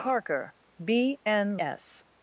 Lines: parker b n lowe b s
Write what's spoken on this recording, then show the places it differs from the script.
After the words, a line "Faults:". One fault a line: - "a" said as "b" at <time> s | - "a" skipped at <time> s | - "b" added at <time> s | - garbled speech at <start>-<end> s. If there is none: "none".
parker b n s
Faults:
- "lowe b" skipped at 1.6 s